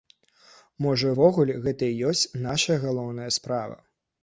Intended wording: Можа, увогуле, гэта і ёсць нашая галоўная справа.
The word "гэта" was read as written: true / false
true